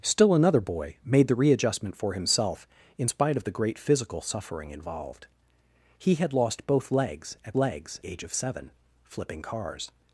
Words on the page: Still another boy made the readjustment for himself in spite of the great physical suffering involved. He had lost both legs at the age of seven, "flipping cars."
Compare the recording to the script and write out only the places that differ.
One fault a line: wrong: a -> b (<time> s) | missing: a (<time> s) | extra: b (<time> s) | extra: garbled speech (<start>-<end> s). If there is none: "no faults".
wrong: the -> legs (7.6 s)